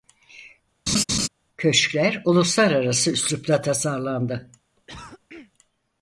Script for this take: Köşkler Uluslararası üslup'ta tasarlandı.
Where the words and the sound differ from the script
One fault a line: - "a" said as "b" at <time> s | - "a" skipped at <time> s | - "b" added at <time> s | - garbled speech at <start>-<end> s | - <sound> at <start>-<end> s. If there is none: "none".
- laugh at 0.9-1.3 s
- cough at 4.8-5.5 s